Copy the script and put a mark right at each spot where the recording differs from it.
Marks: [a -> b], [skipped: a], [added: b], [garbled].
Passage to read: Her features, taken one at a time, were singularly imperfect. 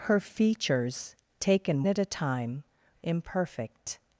Her features, taken [skipped: one] at a time, [skipped: were singularly] imperfect.